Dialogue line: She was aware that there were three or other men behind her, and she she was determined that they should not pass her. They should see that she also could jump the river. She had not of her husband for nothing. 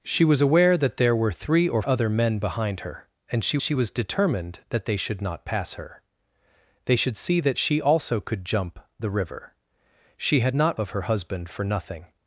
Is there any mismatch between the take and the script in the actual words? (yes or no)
no